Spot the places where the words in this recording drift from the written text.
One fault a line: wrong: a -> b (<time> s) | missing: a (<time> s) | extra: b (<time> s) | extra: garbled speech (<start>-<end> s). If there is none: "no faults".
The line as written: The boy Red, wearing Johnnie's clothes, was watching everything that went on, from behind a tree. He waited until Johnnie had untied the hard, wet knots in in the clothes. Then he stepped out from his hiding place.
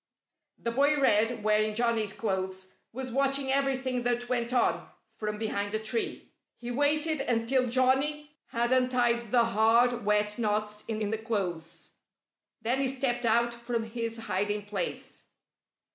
no faults